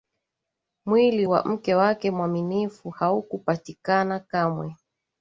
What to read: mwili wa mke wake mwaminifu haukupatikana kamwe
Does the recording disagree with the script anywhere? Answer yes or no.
no